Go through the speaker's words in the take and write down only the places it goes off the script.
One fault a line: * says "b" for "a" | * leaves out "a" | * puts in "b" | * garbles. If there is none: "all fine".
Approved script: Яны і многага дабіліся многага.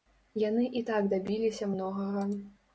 * says "так" for "многага"